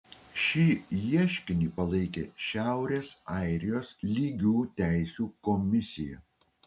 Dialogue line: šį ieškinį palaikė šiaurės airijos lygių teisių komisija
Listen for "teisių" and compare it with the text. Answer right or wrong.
right